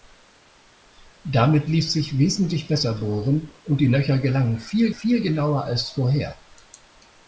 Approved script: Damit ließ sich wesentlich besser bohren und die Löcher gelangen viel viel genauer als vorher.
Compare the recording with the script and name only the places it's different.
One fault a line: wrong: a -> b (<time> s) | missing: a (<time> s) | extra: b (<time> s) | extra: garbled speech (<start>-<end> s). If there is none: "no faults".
no faults